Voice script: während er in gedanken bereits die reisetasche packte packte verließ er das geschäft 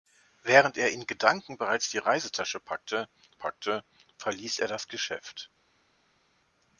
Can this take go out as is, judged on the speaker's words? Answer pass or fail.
pass